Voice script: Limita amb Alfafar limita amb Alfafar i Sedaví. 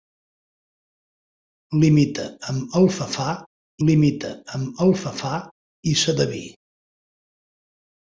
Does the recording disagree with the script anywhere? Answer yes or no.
no